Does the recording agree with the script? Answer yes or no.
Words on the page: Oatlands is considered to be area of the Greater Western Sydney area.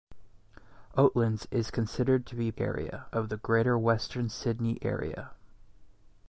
yes